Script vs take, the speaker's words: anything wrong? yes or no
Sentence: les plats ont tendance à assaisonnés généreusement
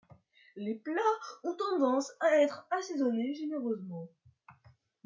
yes